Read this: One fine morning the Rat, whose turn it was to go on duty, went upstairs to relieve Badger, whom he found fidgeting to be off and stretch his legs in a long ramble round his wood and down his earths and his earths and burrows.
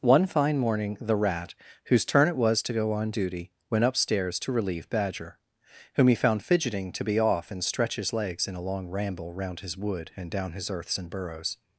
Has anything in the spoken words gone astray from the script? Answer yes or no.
yes